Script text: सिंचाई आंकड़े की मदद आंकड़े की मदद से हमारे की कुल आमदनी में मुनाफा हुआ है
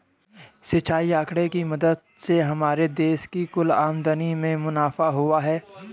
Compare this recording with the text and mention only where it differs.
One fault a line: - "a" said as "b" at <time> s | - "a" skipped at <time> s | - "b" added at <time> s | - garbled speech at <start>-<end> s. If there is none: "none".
- "आंकड़े की मदद" skipped at 2.0 s
- "देश" added at 3.0 s